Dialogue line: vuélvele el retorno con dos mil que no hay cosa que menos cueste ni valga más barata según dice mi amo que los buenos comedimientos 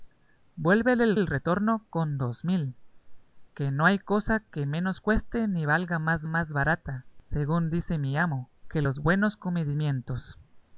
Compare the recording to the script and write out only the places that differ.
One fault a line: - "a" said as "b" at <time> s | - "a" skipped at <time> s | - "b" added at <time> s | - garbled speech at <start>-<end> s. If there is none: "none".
- "el" added at 1.1 s
- "más" added at 6.3 s